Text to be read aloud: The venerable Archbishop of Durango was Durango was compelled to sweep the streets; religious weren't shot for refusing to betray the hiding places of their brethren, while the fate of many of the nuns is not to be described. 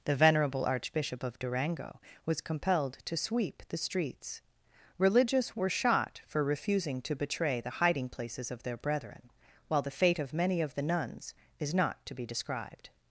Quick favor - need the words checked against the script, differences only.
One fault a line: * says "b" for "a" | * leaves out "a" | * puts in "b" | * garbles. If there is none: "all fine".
* leaves out "Durango was"
* says "were" for "weren't"